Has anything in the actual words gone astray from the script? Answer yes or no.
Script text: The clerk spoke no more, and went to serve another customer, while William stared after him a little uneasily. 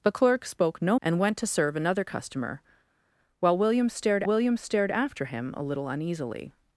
yes